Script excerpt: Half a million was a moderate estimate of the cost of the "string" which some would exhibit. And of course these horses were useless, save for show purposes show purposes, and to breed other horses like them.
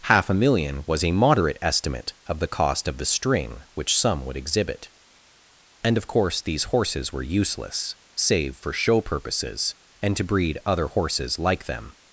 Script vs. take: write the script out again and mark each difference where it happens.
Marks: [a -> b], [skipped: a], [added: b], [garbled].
Half a million was a moderate estimate of the cost of the "string" which some would exhibit. And of course these horses were useless, save for show purposes [skipped: show purposes,] and to breed other horses like them.